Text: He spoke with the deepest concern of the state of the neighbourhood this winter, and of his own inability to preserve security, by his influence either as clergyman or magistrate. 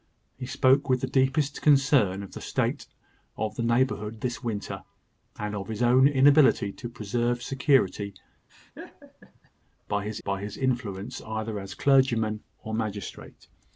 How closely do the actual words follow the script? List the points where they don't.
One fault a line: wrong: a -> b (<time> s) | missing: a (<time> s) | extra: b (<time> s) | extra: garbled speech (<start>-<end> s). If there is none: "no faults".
extra: by his (10.2 s)